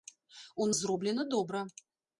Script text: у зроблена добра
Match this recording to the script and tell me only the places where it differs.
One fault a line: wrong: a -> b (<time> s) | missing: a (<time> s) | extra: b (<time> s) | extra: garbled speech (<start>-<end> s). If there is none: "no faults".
no faults